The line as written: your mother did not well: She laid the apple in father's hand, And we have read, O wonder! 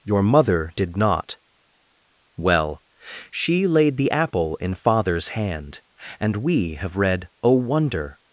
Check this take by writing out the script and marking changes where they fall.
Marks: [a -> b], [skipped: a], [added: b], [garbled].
your mother did not well: She laid the apple in father's hand, And we have read, O wonder!